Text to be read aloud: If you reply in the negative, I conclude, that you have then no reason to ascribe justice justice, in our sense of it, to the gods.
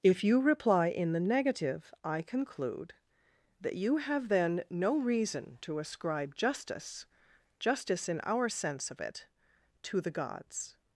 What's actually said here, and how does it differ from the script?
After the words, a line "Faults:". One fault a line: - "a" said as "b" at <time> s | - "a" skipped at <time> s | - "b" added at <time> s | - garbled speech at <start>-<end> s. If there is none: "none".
If you reply in the negative, I conclude, that you have then no reason to ascribe justice justice, in our sense of it, to the gods.
Faults:
none